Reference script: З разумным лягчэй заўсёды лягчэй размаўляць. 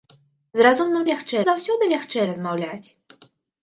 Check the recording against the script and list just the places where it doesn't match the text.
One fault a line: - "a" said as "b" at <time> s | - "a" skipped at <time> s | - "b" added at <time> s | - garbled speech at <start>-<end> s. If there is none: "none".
none